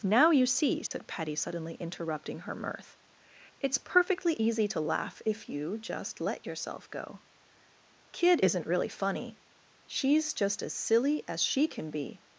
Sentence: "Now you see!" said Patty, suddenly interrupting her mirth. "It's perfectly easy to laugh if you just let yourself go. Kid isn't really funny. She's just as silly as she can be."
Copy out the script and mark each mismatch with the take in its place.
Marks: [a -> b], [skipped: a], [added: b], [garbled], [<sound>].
"Now you see!" said [dropout] Patty, suddenly interrupting her mirth. "It's perfectly easy to laugh if you just let yourself go. Kid isn't really funny. She's just as silly as she can be."